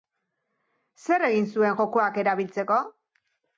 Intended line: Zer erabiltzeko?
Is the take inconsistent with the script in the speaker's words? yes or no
yes